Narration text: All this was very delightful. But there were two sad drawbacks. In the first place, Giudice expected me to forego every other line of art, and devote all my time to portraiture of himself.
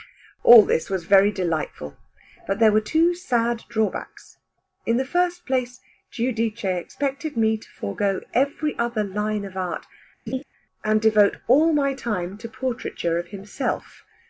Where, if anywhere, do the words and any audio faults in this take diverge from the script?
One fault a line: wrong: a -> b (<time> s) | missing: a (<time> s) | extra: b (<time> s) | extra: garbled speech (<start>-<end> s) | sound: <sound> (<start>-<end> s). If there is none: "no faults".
sound: laugh (10.3-10.4 s)